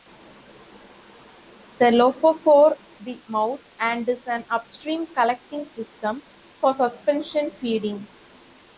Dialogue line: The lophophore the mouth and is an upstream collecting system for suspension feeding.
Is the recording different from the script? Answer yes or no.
no